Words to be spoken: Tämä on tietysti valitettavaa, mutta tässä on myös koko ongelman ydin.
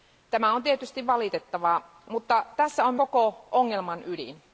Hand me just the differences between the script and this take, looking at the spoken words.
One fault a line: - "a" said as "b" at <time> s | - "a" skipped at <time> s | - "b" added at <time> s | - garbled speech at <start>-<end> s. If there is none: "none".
- "myös" skipped at 3.0 s